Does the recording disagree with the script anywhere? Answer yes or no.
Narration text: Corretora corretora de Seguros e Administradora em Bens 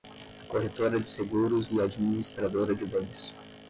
yes